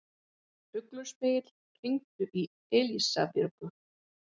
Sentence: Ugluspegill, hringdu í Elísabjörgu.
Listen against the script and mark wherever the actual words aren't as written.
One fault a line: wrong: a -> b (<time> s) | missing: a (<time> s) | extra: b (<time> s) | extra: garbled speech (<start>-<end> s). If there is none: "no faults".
no faults